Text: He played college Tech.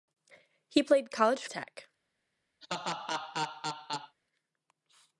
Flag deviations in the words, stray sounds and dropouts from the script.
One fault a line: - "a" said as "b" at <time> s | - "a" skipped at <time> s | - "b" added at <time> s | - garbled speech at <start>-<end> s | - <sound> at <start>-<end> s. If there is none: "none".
- laugh at 2.6-4.2 s